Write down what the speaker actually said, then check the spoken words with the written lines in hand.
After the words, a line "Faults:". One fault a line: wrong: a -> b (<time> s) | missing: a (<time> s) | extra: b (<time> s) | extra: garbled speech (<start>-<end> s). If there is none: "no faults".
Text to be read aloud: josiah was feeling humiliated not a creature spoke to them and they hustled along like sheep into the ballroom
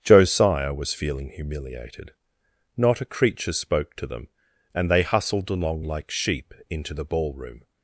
josiah was feeling humiliated not a creature spoke to them and they hustled along like sheep into the ballroom
Faults:
no faults